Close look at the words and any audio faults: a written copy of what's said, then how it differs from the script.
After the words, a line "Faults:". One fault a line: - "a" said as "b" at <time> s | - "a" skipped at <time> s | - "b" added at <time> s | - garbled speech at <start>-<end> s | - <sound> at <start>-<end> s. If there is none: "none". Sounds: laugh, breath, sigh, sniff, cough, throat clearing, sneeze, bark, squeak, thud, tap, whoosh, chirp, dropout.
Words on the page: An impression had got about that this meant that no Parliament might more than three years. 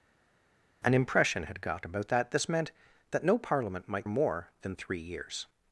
An impression had got about that this meant that no Parliament might more than three years.
Faults:
none